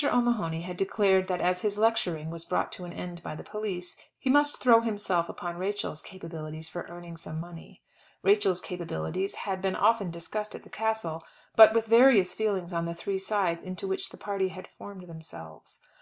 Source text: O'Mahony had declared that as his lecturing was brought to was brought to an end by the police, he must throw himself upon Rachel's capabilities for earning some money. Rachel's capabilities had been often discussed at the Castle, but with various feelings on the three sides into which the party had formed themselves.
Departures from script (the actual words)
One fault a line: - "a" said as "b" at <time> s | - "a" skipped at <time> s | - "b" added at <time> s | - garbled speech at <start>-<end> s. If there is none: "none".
- "was brought to" skipped at 2.9 s